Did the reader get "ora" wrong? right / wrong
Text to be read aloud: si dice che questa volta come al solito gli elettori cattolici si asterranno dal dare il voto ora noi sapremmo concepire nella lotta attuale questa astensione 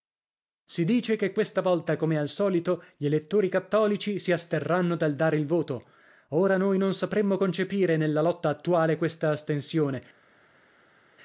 right